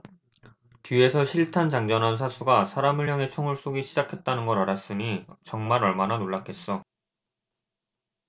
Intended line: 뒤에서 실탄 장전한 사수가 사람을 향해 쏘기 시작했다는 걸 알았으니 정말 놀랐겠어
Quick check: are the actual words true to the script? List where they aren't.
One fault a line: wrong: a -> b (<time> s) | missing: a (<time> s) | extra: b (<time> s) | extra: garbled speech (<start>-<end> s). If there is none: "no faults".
extra: 총을 (3.3 s)
extra: 얼마나 (5.8 s)